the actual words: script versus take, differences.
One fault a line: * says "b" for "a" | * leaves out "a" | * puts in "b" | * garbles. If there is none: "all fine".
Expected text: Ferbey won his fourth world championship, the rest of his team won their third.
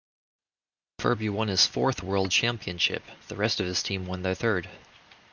all fine